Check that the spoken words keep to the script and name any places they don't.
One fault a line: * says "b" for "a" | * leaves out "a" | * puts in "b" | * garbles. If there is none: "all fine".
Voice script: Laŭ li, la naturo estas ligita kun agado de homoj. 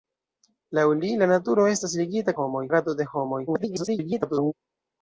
* says "homoj" for "kun"
* garbles